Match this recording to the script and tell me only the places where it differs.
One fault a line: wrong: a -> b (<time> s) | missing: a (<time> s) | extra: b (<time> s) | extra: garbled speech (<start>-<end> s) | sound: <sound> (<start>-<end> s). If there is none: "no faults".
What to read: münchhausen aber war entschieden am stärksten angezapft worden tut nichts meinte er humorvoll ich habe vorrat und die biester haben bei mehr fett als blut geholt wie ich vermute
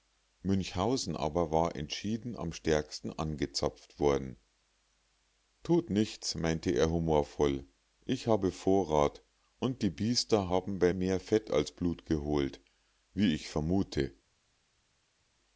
no faults